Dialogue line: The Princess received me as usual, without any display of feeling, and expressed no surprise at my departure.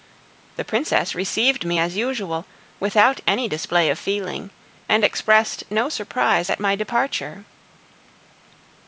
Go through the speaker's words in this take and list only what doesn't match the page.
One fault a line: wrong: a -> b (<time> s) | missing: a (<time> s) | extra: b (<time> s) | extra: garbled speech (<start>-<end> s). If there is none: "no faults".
no faults